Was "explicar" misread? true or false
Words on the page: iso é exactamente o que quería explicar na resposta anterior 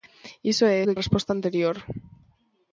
true